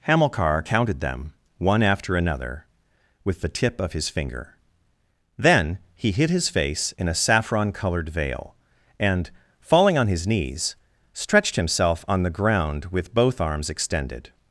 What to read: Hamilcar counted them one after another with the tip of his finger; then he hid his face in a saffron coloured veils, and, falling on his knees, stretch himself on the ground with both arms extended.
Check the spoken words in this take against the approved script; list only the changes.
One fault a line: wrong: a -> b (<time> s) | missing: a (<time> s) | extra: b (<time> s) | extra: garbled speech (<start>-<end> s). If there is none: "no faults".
wrong: veils -> veil (8.1 s)
wrong: stretch -> stretched (11.1 s)